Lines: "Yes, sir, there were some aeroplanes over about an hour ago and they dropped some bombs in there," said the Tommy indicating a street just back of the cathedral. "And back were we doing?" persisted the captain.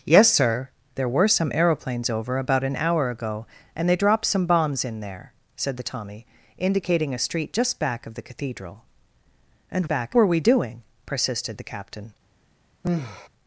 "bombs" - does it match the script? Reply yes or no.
yes